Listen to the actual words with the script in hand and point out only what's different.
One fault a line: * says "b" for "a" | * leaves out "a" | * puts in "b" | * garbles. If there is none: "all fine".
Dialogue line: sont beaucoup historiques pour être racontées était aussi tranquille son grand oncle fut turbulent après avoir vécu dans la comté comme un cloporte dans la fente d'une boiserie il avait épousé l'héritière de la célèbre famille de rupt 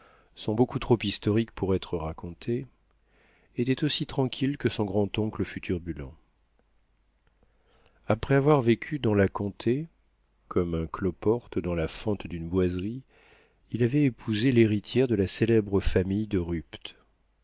* puts in "trop"
* puts in "que"